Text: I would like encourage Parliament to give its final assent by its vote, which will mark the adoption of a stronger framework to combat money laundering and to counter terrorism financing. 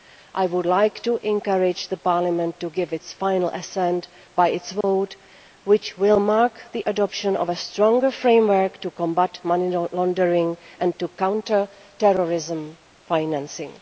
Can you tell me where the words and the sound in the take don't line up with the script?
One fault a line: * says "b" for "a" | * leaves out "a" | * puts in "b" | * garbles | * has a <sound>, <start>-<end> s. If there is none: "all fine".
* puts in "to"
* has a dropout, 4.8-4.8 s